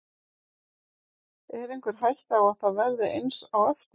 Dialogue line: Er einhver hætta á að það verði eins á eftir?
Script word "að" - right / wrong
right